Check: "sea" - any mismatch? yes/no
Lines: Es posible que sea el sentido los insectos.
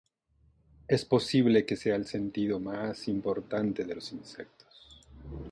no